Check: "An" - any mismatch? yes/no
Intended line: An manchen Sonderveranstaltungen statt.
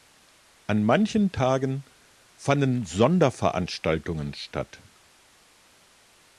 no